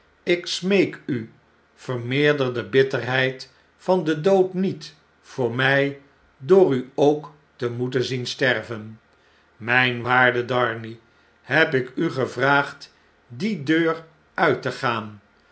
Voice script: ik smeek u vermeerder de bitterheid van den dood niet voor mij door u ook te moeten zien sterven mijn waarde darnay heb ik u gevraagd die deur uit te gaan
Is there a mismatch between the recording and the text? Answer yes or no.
no